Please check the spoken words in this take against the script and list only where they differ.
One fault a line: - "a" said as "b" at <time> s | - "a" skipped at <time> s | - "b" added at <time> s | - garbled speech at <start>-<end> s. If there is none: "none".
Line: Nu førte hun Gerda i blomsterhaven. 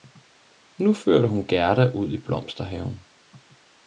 - "ud" added at 1.9 s